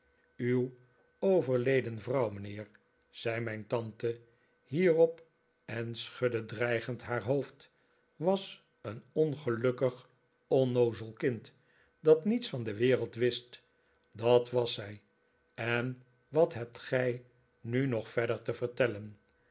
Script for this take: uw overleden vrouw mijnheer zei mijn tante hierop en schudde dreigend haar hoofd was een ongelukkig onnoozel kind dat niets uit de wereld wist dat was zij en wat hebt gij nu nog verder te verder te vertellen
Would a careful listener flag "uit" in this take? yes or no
yes